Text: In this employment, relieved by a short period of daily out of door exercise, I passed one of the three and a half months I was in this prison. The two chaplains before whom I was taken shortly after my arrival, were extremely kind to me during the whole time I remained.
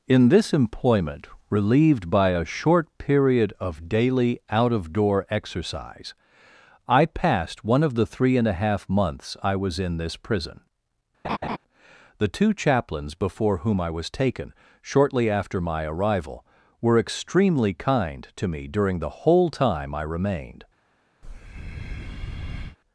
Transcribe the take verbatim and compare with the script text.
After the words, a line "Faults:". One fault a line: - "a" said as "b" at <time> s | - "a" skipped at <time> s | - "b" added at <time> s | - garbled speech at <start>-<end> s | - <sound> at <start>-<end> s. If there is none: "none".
In this employment, relieved by a short period of daily out of door exercise, I passed one of the three and a half months I was in this prison. The two chaplains before whom I was taken shortly after my arrival, were extremely kind to me during the whole time I remained.
Faults:
- laugh at 11.2-11.6 s
- breath at 21.2-22.8 s